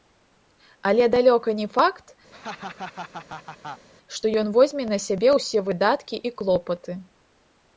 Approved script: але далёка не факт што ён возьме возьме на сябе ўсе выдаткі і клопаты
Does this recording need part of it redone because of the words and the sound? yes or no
yes